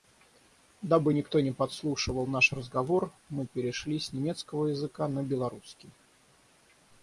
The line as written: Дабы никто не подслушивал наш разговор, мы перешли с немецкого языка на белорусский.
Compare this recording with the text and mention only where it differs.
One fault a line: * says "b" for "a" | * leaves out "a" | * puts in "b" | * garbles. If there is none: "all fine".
all fine